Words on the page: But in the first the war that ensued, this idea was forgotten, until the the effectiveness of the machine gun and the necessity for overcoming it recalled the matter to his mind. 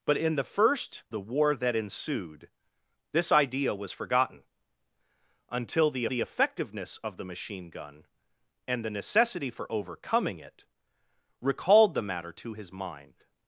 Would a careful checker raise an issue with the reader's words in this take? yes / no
no